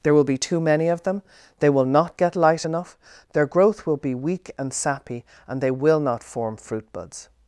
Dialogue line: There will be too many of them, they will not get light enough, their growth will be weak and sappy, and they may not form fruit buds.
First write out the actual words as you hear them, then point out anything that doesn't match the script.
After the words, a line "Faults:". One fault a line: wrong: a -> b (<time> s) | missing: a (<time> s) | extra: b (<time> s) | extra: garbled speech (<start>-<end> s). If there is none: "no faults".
There will be too many of them, they will not get light enough, their growth will be weak and sappy, and they will not form fruit buds.
Faults:
wrong: may -> will (5.7 s)